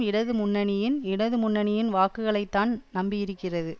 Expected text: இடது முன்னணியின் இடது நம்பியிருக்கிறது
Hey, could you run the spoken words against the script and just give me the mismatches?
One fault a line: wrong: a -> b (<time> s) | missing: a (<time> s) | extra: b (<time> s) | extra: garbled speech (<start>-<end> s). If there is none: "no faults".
extra: முன்னணியின் வாக்குகளைத்தான் (1.4 s)